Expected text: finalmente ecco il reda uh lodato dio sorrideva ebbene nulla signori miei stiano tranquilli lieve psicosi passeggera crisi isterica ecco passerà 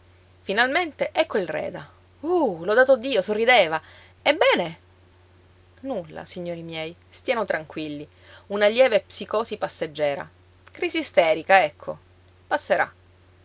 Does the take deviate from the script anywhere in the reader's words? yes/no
yes